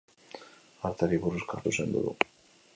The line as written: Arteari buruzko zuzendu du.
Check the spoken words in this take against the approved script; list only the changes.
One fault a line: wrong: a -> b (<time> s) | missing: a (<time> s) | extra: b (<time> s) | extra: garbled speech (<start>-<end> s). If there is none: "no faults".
no faults